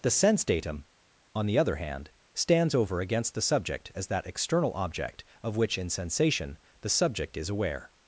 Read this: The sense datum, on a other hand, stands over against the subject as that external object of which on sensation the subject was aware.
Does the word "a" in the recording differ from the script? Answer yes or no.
yes